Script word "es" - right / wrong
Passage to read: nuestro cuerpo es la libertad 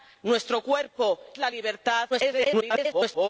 wrong